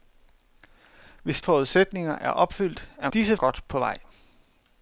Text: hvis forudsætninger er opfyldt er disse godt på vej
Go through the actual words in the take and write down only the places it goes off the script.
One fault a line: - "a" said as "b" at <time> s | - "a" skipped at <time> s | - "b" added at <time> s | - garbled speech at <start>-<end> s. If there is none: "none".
none